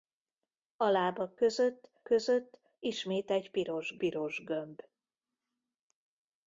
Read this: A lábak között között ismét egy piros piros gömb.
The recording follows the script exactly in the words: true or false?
true